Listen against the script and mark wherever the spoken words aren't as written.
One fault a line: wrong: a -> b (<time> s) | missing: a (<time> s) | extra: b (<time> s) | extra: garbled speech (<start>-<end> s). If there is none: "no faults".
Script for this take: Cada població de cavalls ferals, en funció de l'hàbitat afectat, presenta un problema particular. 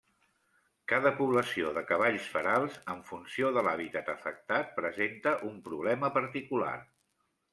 no faults